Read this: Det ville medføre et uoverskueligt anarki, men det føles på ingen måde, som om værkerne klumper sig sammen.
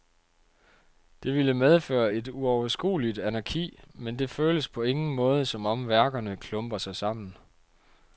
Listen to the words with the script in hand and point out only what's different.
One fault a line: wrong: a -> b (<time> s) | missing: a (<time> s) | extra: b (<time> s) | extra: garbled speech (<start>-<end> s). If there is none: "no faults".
no faults